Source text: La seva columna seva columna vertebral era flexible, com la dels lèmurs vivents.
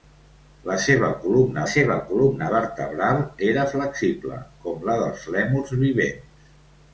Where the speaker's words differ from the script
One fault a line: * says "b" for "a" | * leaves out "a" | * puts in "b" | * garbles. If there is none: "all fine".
all fine